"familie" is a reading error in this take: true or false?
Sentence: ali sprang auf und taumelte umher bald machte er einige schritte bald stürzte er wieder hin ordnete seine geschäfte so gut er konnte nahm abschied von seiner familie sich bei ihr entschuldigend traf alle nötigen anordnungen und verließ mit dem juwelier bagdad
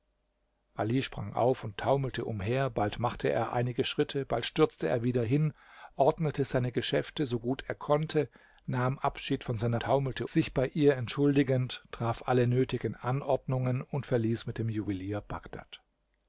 true